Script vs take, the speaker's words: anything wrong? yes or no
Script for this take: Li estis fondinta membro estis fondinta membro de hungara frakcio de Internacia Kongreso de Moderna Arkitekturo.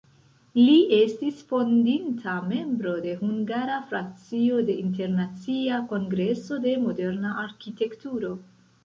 yes